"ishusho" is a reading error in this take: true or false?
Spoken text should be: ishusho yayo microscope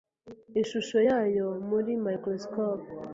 false